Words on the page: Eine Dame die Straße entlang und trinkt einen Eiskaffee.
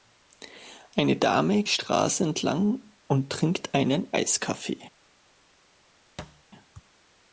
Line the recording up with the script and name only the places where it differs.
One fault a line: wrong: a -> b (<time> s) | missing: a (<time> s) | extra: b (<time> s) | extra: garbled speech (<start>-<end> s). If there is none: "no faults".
no faults